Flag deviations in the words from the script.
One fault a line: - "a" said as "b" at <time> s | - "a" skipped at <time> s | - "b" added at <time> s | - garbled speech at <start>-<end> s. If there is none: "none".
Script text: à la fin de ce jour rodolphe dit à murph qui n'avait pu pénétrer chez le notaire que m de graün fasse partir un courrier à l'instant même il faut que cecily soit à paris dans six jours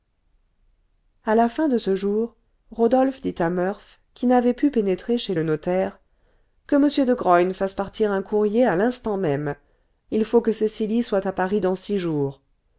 none